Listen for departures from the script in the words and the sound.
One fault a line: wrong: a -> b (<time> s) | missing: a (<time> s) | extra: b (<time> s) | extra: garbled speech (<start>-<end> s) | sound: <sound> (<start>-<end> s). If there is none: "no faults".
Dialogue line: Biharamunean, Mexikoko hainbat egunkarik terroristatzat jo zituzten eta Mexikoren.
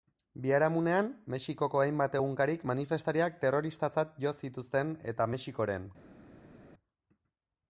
extra: manifestariak (2.7 s)